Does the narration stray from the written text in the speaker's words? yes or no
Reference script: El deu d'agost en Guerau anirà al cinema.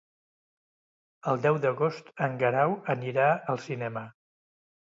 no